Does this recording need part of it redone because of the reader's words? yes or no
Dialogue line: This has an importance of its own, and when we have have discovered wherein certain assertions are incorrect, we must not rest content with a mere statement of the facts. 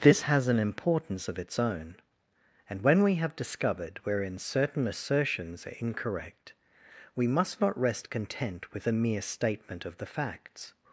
yes